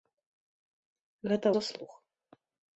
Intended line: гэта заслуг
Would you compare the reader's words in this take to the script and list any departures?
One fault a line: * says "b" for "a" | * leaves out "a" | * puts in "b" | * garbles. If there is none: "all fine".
all fine